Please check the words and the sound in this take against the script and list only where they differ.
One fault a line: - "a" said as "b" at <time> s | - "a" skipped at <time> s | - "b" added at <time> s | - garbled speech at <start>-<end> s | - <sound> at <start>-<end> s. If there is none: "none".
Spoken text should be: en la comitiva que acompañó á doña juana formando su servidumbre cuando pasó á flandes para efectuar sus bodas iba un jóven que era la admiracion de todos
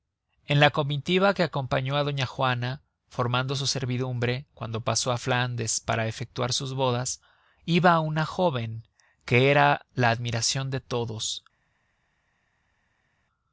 - "un" said as "una" at 8.0 s